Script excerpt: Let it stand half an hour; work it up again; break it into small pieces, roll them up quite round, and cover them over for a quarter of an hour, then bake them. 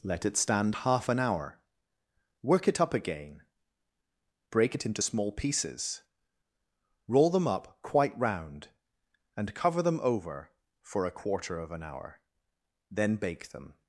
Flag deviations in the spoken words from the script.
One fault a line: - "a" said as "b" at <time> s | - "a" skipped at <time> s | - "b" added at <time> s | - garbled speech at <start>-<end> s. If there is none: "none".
none